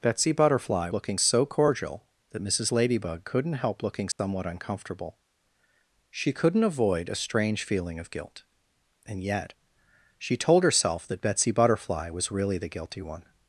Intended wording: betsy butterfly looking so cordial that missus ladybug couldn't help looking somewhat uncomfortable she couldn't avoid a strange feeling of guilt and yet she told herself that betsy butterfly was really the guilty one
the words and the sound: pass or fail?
fail